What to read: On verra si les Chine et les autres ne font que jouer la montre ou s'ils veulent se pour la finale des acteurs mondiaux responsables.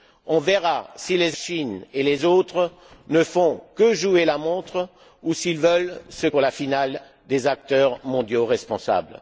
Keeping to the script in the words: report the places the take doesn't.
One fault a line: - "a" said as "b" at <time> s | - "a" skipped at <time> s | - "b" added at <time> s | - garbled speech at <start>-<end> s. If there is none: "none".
none